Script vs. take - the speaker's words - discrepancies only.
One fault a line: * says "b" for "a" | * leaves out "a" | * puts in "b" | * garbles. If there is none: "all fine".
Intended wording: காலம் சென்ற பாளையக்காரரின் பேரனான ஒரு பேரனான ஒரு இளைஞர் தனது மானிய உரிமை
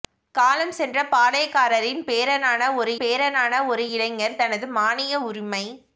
all fine